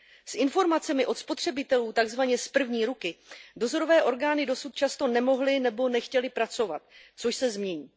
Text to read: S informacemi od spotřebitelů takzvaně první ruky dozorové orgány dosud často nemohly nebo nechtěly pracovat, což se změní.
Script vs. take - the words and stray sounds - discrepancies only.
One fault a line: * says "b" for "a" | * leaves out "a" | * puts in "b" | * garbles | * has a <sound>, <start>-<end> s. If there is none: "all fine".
* puts in "z"